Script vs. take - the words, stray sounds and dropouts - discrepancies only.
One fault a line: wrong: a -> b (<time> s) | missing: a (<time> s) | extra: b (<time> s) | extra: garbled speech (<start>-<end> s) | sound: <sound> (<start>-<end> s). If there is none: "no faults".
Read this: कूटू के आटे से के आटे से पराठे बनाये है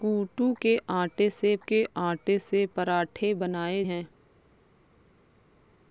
no faults